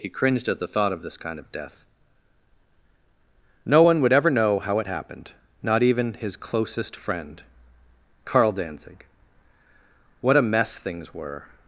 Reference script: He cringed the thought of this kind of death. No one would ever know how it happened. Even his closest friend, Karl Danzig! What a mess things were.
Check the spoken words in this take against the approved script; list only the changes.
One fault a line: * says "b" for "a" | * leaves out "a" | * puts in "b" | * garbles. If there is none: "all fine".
* puts in "at"
* puts in "Not"